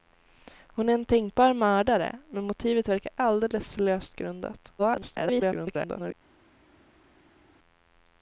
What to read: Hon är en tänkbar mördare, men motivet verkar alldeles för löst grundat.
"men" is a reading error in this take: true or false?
false